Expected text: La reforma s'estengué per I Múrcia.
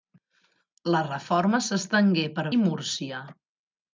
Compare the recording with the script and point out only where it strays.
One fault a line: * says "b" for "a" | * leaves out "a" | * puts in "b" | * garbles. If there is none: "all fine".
all fine